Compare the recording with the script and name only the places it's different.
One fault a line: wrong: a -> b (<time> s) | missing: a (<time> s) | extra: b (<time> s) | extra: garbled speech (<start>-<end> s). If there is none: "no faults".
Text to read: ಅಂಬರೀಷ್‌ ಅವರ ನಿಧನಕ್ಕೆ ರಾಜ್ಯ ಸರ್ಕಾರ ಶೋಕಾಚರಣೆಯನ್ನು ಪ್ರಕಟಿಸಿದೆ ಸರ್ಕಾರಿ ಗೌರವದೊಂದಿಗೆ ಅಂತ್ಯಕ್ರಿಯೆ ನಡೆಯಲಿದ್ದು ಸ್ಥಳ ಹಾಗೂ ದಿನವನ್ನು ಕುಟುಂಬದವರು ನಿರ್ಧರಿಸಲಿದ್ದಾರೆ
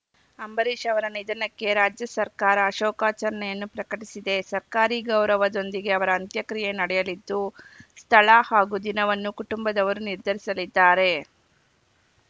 extra: ಅವರ (6.0 s)